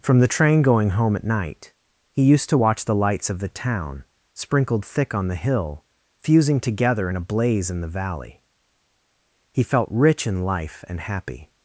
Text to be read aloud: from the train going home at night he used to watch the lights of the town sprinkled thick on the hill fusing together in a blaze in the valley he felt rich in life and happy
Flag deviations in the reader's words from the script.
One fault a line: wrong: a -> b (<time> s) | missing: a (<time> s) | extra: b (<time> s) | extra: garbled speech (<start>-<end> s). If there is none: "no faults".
no faults